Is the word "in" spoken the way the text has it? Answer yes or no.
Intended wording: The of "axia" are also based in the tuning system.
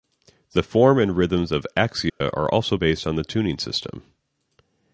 no